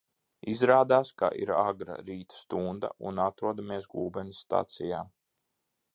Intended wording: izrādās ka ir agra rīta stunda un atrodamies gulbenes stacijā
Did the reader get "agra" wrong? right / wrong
right